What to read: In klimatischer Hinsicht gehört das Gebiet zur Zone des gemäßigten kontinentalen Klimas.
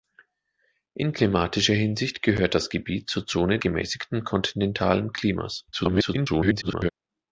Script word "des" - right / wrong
wrong